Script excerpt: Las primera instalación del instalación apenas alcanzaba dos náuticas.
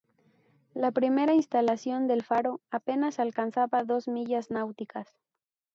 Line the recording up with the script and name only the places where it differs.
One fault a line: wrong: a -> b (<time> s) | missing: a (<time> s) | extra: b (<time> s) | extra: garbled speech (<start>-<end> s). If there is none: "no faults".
wrong: Las -> La (0.7 s)
wrong: instalación -> faro (2.2 s)
extra: millas (4.1 s)